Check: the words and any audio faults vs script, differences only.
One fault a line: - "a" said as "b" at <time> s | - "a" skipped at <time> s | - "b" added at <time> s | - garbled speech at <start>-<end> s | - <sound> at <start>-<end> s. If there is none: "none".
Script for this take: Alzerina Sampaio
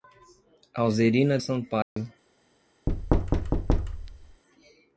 - dropout at 1.8-2.0 s
- thud at 2.9-4.4 s